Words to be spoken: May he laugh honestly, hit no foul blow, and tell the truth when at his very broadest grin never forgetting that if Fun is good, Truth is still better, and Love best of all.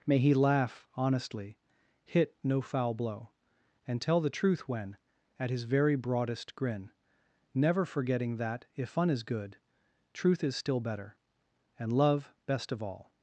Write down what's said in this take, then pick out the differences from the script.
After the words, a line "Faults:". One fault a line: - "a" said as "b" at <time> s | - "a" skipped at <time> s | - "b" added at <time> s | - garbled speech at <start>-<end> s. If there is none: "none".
May he laugh honestly, hit no foul blow, and tell the truth when at his very broadest grin never forgetting that if Fun is good, Truth is still better, and Love best of all.
Faults:
none